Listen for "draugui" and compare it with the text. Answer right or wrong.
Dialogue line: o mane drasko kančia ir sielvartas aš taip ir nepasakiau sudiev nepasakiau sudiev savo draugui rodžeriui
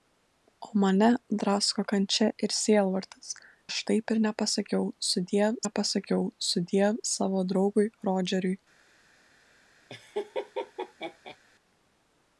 right